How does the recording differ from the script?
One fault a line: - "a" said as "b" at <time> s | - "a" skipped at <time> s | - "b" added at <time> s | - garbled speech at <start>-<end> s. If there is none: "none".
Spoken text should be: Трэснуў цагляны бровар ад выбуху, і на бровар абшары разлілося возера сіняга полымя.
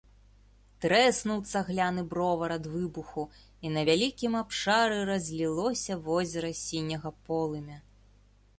- "бровар" said as "вялікім" at 3.9 s